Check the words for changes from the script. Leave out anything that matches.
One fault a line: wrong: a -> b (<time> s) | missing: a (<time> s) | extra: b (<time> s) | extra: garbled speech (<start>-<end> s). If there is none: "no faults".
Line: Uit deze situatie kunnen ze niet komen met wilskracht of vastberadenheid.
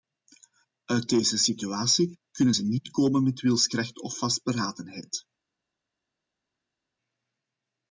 no faults